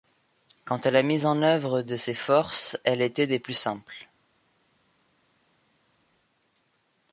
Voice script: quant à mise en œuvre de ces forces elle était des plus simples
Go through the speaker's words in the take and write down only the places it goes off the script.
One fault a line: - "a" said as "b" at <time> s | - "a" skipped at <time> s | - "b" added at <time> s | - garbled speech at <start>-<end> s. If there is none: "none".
- "la" added at 0.9 s